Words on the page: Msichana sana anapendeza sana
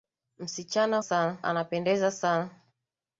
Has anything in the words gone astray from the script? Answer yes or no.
no